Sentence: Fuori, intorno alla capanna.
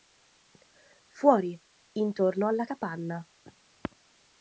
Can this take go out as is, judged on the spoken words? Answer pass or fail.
pass